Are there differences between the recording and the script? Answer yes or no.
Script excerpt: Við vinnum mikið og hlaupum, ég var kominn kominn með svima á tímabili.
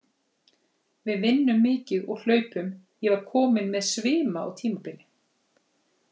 yes